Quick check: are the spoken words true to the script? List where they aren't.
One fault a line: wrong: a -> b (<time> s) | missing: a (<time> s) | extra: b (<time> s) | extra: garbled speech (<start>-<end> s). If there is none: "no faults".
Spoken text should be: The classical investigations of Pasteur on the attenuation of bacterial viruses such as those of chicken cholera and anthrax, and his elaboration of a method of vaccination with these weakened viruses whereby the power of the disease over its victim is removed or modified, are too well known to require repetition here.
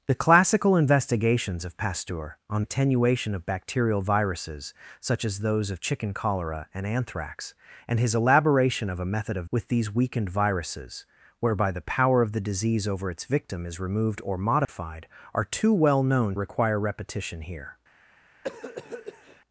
missing: the (2.6 s)
missing: vaccination (9.5 s)
missing: to (16.4 s)